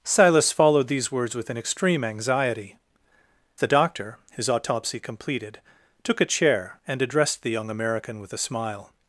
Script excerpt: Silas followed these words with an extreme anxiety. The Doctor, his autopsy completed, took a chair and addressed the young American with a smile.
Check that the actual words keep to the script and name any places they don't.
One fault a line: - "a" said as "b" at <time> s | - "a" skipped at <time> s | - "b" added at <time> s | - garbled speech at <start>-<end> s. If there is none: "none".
none